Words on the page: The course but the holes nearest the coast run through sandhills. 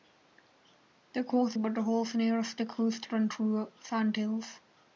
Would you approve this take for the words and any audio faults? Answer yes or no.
yes